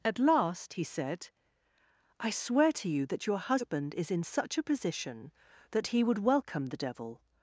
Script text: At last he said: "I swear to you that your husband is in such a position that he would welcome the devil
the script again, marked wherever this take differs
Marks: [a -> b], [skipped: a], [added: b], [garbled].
At last he said: "I swear to you that your husband is in such a position that he would welcome the devil